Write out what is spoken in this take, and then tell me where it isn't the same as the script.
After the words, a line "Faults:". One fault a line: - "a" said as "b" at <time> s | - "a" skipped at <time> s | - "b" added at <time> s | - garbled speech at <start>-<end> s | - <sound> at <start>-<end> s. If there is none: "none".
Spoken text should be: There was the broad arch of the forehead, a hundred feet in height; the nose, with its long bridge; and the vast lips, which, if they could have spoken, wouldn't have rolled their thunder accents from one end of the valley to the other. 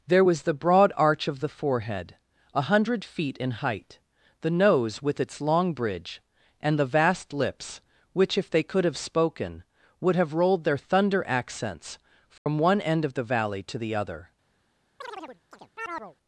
There was the broad arch of the forehead, a hundred feet in height; the nose, with its long bridge; and the vast lips, which, if they could have spoken, would have rolled their thunder accents from one end of the valley to the other.
Faults:
- "wouldn't" said as "would" at 10.0 s
- dropout at 12.4-12.5 s
- chirp at 15.0-16.2 s